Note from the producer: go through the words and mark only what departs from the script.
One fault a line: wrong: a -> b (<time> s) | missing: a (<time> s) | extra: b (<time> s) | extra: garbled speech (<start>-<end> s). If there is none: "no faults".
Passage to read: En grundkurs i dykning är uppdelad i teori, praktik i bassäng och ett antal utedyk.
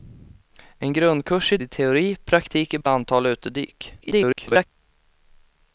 missing: dykning är uppdelad (1.6 s)
missing: bassäng och (2.8 s)
extra: garbled speech (4.0-4.6 s)